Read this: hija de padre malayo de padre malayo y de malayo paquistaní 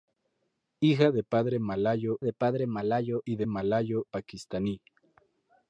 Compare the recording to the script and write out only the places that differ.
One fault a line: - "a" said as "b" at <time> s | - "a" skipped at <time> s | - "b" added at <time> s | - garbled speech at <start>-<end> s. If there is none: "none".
none